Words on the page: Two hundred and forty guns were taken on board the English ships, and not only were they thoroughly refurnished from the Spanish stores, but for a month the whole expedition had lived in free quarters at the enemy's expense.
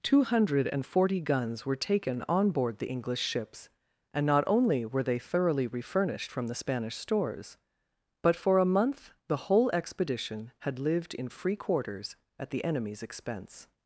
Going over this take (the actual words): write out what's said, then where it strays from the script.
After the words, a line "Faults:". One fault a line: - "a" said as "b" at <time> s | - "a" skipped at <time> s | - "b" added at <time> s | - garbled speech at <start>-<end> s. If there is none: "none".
Two hundred and forty guns were taken on board the English ships, and not only were they thoroughly refurnished from the Spanish stores, but for a month the whole expedition had lived in free quarters at the enemy's expense.
Faults:
none